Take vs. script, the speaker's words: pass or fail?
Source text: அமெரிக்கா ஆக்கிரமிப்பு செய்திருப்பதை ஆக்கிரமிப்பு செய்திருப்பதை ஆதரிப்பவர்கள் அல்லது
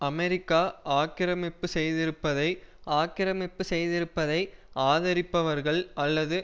pass